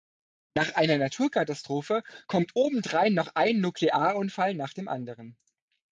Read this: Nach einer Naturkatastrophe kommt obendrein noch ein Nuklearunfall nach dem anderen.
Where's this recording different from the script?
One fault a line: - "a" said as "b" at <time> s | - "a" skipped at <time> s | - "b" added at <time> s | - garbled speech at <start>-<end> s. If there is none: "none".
none